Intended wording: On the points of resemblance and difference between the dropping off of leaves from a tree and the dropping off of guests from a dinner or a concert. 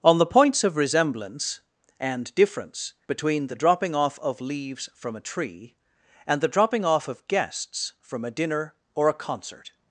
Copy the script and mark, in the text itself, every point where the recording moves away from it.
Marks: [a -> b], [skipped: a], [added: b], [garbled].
On the points of resemblance and difference between the dropping off of leaves from a tree and the dropping off of guests from a dinner or a concert.